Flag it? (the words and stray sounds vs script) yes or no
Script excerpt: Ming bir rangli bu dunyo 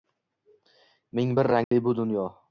yes